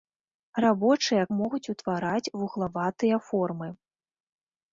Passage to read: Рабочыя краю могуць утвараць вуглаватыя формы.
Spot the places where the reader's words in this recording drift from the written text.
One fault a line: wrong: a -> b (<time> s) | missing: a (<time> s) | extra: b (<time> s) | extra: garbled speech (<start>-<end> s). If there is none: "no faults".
missing: краю (1.2 s)